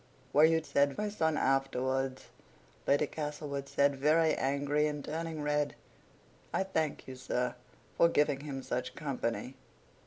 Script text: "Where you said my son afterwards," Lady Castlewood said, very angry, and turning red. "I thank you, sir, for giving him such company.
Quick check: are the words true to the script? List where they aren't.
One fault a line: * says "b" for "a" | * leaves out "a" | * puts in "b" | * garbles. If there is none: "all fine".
all fine